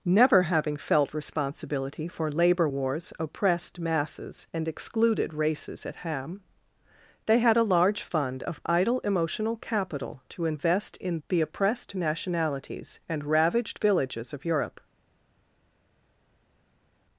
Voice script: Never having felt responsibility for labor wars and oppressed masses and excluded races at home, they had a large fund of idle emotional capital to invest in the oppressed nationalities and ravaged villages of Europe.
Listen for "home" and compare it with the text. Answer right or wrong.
wrong